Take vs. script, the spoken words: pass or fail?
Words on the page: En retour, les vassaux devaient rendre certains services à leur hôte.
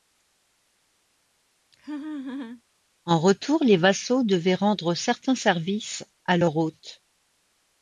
pass